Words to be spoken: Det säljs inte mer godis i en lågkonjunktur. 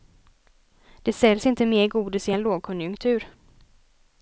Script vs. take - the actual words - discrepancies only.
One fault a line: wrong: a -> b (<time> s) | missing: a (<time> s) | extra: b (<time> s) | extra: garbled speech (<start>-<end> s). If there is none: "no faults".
no faults